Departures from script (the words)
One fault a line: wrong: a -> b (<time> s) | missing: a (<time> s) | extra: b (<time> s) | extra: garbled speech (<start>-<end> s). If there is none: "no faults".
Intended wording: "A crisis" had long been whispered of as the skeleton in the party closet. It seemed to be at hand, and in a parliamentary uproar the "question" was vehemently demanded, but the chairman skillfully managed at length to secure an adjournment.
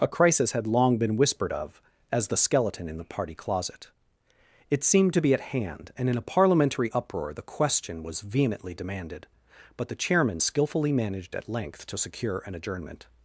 no faults